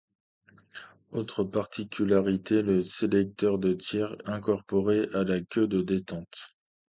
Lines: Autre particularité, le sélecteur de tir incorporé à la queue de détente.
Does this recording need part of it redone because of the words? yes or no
no